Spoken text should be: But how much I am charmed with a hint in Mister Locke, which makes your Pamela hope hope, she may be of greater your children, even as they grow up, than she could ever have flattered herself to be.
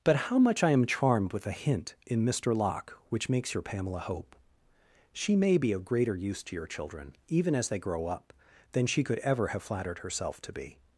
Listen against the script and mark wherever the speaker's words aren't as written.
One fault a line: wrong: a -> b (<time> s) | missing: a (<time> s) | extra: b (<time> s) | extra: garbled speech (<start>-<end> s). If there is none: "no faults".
missing: hope (4.3 s)
extra: use to (6.1 s)